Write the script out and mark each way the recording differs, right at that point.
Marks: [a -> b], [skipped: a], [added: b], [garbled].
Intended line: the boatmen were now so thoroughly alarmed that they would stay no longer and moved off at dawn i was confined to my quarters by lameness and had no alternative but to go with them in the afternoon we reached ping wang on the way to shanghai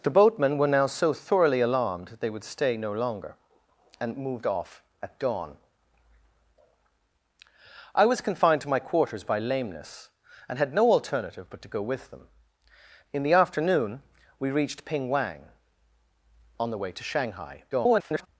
the boatmen were now so thoroughly alarmed that they would stay no longer and moved off at dawn i was confined to my quarters by lameness and had no alternative but to go with them in the afternoon we reached ping wang on the way to shanghai [garbled]